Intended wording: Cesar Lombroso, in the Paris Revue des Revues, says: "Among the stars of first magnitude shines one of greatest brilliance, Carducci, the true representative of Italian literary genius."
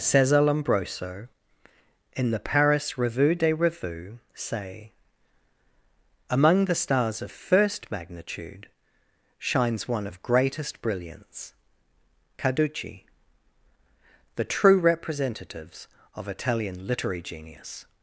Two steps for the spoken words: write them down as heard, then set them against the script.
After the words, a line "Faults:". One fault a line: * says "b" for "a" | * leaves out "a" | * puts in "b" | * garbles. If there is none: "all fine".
Cesar Lombroso, in the Paris Revue des Revues, say: "Among the stars of first magnitude shines one of greatest brilliance, Carducci, the true representatives of Italian literary genius."
Faults:
* says "say" for "says"
* says "representatives" for "representative"